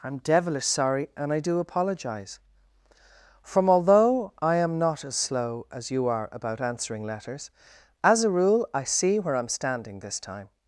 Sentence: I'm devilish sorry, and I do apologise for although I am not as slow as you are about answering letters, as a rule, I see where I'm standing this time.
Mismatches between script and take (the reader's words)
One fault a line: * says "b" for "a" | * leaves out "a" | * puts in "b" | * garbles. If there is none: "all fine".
* says "from" for "for"